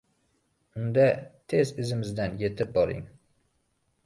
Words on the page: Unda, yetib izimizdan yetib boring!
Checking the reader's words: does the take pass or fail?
fail